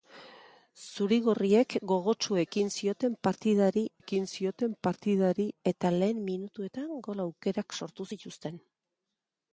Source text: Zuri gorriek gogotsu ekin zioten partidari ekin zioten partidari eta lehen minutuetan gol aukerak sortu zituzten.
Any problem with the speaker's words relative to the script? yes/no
no